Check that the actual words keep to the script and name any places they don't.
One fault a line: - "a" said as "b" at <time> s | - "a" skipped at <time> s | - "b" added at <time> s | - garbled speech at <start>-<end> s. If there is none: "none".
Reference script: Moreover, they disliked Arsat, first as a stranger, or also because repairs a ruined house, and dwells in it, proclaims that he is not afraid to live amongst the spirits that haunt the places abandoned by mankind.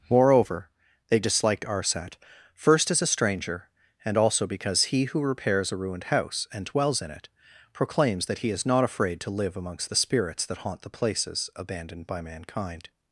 - "or" said as "and" at 4.0 s
- "he who" added at 4.8 s